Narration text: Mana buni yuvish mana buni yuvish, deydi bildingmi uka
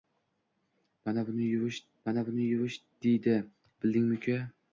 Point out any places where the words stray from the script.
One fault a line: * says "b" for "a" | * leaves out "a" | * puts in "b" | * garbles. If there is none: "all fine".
all fine